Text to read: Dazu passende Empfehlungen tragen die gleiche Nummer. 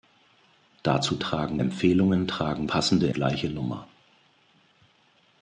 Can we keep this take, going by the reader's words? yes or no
no